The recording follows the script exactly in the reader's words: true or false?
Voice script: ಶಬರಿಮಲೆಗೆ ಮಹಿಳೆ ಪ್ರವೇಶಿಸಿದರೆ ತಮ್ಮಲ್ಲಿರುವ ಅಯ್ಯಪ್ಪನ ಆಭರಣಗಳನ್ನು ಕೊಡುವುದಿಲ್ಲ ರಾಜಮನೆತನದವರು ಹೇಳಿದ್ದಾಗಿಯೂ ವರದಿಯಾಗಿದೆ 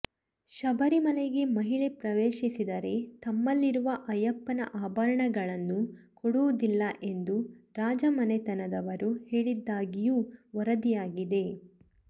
false